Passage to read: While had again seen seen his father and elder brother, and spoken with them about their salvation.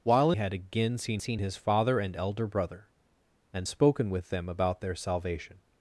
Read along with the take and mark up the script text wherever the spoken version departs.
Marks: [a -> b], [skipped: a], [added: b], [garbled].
While had again seen seen his father and elder brother, and spoken with them about their salvation.